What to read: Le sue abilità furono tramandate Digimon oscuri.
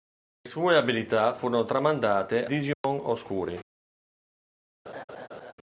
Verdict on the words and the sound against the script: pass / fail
fail